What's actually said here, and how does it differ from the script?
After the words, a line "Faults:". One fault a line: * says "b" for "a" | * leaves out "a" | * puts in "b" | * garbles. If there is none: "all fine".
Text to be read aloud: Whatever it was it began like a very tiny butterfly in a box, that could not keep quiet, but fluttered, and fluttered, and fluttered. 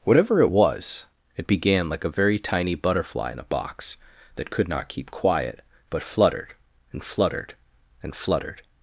Whatever it was it began like a very tiny butterfly in a box, that could not keep quiet, but fluttered, and fluttered, and fluttered.
Faults:
all fine